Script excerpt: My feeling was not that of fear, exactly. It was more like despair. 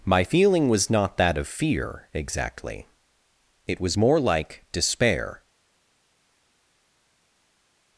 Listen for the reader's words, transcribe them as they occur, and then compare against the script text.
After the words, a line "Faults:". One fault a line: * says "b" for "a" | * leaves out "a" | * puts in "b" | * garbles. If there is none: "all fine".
My feeling was not that of fear, exactly. It was more like despair.
Faults:
all fine